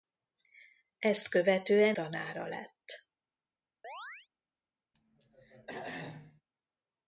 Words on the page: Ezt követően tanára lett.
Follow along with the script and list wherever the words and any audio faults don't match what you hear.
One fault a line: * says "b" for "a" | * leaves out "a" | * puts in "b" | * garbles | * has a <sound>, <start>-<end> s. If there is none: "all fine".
* has a chirp, 3.8-4.3 s
* has a throat clearing, 4.9-6.4 s